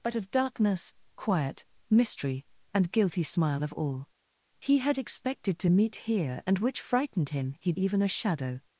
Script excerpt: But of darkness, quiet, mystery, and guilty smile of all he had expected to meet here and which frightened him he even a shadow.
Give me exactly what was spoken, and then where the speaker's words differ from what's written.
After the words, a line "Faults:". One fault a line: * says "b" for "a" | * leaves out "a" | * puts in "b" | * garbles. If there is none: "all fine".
But of darkness, quiet, mystery, and guilty smile of all he had expected to meet here and which frightened him he even a shadow.
Faults:
all fine